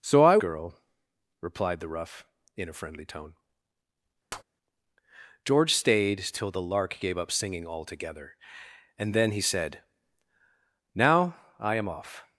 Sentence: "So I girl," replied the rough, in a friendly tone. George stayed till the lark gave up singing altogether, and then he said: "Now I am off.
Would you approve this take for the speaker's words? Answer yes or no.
yes